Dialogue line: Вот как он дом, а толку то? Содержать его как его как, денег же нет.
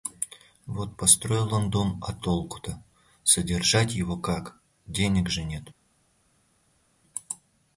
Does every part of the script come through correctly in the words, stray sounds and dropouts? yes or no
no